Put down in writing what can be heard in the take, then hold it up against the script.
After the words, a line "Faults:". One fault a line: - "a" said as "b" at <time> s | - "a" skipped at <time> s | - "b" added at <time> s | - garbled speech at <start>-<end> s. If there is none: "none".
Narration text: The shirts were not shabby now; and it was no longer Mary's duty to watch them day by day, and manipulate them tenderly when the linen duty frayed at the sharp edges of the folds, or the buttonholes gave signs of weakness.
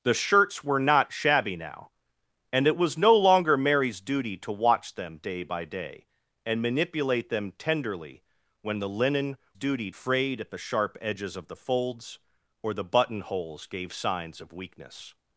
The shirts were not shabby now; and it was no longer Mary's duty to watch them day by day, and manipulate them tenderly when the linen duty frayed at the sharp edges of the folds, or the buttonholes gave signs of weakness.
Faults:
none